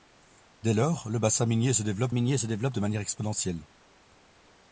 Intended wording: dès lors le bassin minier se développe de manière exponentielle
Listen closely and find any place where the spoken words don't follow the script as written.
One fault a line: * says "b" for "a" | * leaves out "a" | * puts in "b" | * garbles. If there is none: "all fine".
* puts in "minier se développe"